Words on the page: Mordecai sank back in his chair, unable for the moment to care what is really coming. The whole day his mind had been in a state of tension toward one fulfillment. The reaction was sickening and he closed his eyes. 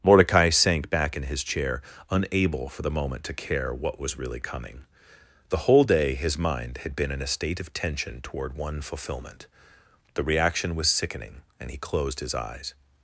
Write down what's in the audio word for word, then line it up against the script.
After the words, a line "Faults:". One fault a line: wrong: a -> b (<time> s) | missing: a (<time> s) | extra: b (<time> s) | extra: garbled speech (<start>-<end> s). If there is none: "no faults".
Mordecai sank back in his chair, unable for the moment to care what was really coming. The whole day his mind had been in a state of tension toward one fulfillment. The reaction was sickening and he closed his eyes.
Faults:
wrong: is -> was (4.0 s)